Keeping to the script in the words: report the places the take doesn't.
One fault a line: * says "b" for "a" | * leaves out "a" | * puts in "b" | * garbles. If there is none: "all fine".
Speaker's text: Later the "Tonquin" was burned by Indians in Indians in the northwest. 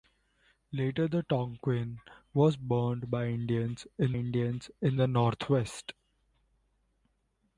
all fine